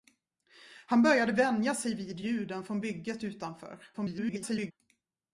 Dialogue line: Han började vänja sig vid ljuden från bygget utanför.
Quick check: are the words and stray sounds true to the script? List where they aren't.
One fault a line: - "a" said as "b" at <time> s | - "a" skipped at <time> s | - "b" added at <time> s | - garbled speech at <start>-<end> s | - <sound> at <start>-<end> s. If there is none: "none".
- garbled speech at 3.9-4.7 s